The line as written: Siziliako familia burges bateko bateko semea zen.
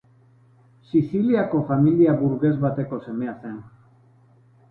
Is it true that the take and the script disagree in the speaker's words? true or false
true